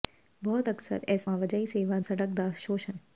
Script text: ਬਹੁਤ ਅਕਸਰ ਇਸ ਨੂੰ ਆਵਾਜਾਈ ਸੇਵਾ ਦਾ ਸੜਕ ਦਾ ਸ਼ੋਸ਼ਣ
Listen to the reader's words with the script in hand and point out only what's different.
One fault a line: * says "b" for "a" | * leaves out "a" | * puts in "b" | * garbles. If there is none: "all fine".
* leaves out "ਨੂੰ"
* leaves out "ਦਾ"